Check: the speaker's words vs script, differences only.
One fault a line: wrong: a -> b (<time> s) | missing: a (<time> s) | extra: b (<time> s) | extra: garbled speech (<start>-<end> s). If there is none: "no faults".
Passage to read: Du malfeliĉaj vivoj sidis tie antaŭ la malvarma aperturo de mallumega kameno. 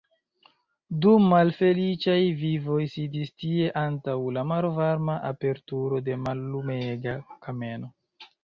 no faults